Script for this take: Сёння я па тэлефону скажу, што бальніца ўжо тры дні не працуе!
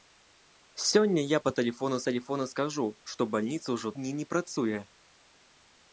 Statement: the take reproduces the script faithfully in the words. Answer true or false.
false